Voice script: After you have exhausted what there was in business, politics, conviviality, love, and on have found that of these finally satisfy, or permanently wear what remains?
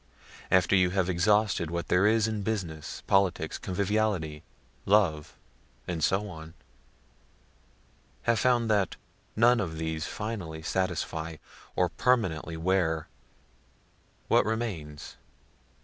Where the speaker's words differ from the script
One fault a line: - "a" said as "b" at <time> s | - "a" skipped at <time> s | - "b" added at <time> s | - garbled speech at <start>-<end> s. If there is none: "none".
- "was" said as "is" at 2.1 s
- "so" added at 6.0 s
- "none" added at 9.3 s